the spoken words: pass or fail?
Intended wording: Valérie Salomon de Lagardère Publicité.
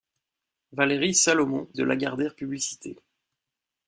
pass